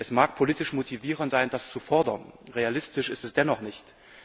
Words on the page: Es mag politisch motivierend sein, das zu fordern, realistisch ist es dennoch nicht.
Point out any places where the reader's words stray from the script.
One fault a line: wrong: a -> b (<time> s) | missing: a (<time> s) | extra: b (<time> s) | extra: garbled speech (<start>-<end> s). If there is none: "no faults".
no faults